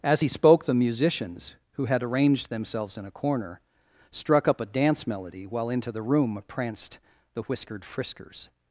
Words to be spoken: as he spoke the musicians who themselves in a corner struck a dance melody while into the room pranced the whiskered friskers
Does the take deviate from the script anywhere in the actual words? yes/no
yes